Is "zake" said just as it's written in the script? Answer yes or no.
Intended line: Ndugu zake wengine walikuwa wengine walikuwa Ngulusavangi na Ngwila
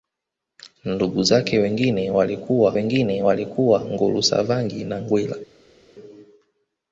yes